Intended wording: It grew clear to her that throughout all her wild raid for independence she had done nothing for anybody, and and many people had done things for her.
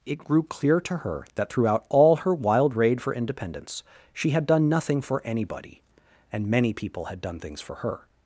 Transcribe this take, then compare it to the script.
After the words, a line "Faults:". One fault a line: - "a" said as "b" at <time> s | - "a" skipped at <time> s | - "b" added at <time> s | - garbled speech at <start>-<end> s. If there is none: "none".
It grew clear to her that throughout all her wild raid for independence she had done nothing for anybody, and many people had done things for her.
Faults:
- "and" skipped at 6.5 s